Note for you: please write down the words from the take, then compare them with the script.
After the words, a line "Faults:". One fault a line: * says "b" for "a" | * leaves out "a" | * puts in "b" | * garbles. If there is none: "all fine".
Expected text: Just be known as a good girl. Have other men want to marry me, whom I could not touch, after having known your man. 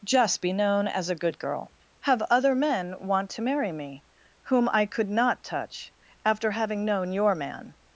Just be known as a good girl. Have other men want to marry me, whom I could not touch, after having known your man.
Faults:
all fine